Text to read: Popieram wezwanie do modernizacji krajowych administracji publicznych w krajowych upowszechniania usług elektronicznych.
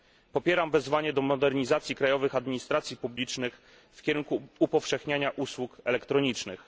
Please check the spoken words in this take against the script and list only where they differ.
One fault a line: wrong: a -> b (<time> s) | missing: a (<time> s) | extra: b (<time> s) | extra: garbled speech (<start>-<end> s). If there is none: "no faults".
wrong: krajowych -> kierunku (4.0 s)